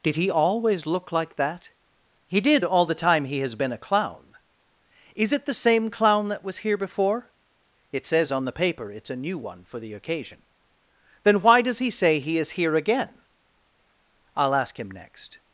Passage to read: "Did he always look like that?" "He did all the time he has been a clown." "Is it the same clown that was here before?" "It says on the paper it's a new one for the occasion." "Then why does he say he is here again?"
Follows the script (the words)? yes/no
no